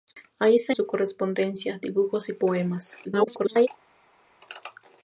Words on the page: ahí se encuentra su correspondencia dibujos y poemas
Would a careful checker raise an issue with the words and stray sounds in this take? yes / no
yes